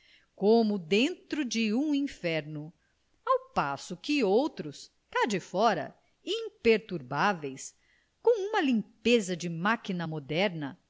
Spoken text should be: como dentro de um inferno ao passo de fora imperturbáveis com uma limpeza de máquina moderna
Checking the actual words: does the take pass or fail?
fail